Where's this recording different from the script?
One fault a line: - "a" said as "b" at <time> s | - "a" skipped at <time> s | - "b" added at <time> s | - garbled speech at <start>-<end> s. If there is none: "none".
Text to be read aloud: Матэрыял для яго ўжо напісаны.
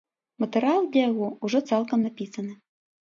- "цалкам" added at 1.7 s